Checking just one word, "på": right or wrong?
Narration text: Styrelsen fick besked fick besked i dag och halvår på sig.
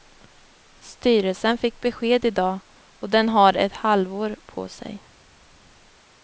right